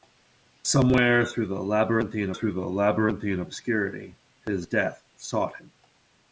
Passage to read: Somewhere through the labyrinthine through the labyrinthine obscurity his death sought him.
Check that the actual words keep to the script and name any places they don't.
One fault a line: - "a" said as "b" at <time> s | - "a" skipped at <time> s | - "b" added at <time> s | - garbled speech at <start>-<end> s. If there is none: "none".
none